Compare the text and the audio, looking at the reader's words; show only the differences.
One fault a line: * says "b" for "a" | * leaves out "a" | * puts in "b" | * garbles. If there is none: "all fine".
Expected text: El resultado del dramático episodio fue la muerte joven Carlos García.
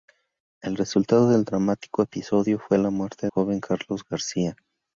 all fine